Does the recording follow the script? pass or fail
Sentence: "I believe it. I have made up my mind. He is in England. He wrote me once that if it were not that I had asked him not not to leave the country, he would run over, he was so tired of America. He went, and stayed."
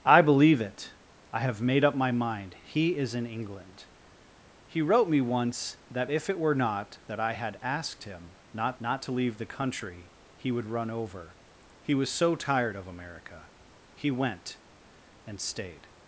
pass